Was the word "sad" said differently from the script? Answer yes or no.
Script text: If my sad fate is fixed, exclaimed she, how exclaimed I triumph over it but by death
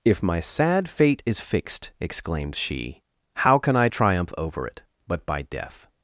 no